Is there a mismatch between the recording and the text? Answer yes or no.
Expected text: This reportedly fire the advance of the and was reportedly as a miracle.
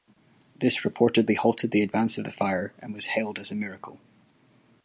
yes